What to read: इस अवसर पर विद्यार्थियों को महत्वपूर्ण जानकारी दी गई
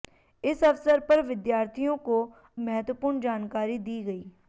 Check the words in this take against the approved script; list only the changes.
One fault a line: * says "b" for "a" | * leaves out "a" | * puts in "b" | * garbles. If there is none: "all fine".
all fine